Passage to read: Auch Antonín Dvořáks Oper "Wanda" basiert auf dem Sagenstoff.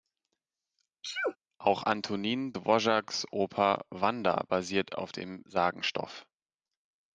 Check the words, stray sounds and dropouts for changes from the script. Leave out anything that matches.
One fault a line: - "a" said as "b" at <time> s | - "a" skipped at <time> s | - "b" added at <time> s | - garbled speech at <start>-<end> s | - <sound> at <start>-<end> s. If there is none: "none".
- sneeze at 1.0-1.4 s